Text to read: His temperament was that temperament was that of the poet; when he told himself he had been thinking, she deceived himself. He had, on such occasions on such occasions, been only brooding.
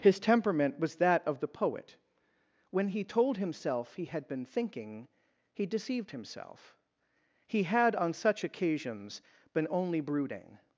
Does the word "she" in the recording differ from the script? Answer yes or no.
yes